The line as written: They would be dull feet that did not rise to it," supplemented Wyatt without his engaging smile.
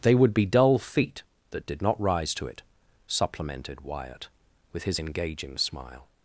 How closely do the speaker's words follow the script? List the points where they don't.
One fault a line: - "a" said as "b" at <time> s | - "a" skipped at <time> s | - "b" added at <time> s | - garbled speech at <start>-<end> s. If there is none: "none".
- "without" said as "with" at 4.7 s